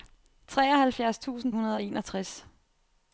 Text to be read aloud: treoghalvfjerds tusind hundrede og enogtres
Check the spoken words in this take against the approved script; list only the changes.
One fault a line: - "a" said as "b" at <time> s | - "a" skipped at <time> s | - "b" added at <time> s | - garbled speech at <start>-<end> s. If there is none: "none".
none